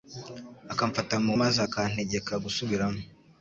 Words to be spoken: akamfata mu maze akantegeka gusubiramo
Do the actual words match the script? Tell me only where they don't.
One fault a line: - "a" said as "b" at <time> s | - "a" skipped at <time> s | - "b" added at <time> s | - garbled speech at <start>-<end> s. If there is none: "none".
none